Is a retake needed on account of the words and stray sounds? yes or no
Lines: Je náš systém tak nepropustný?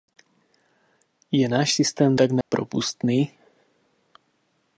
yes